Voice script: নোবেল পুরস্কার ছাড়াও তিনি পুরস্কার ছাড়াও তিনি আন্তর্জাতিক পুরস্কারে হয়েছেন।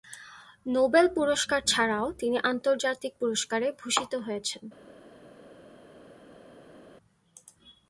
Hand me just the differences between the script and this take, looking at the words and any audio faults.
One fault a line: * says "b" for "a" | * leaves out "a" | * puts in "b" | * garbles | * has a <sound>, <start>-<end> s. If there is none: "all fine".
* leaves out "পুরস্কার ছাড়াও তিনি"
* puts in "ভূষিত"